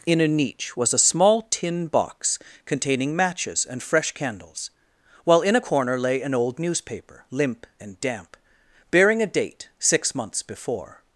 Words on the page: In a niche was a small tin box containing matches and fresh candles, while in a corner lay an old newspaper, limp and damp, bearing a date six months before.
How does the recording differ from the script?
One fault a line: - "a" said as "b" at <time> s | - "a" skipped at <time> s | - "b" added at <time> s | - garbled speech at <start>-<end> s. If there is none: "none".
none